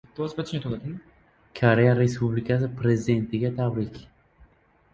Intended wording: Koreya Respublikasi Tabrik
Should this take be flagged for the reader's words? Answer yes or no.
yes